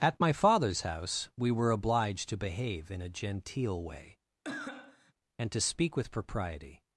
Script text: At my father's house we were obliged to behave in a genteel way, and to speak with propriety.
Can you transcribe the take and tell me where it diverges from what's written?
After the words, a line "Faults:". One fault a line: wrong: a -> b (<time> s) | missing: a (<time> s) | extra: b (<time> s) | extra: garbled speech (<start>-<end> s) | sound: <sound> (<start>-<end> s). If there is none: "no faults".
At my father's house we were obliged to behave in a genteel way, and to speak with propriety.
Faults:
sound: cough (4.4-5.1 s)